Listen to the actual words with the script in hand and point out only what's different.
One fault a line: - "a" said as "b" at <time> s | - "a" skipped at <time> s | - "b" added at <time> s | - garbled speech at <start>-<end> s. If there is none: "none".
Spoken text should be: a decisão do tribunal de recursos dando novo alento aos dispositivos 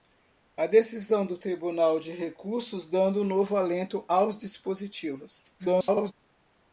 - garbled speech at 5.6-6.1 s